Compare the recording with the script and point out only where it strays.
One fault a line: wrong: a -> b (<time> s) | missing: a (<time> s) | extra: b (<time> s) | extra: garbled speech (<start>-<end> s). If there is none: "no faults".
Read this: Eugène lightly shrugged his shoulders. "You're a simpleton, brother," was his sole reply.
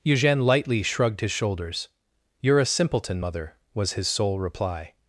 wrong: brother -> mother (3.2 s)